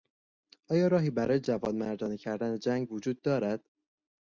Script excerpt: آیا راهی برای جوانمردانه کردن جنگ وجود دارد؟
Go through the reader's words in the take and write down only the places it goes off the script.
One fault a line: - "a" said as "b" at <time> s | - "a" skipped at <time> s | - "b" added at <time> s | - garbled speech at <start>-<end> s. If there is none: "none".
none